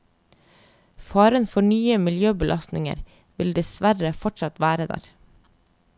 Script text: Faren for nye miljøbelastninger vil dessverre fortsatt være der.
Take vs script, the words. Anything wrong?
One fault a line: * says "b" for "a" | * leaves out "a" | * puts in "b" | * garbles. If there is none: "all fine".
all fine